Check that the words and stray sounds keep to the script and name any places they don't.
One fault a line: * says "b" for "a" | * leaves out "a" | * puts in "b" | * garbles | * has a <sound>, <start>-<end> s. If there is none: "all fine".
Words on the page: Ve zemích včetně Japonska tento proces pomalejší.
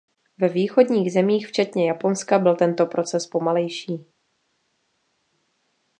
* puts in "východních"
* puts in "byl"